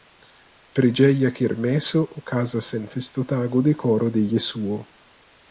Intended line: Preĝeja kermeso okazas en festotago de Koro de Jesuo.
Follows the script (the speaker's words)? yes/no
yes